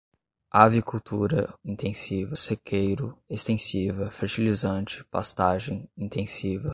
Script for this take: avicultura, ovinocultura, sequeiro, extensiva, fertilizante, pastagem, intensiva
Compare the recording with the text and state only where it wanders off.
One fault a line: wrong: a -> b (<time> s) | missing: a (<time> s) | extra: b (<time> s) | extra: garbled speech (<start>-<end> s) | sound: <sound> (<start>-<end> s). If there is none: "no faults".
wrong: ovinocultura -> intensiva (1.6 s)